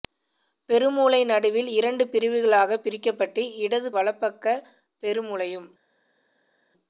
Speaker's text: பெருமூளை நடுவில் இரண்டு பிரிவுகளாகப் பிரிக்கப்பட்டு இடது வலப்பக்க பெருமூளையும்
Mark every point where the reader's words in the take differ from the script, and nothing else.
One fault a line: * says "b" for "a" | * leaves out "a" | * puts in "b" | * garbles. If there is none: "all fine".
all fine